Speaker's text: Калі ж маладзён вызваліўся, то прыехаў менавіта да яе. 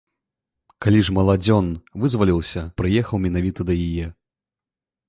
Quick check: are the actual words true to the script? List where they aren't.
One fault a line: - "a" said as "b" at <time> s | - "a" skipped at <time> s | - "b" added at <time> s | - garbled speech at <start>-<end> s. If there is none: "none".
- "то" skipped at 2.6 s